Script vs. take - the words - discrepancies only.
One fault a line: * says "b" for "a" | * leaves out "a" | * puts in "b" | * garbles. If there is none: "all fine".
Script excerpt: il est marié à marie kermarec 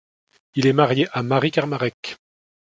all fine